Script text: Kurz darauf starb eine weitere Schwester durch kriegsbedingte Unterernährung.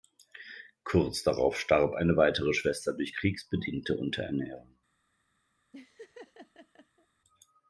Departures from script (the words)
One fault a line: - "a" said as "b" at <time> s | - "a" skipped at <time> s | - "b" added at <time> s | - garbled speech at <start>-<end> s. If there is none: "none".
none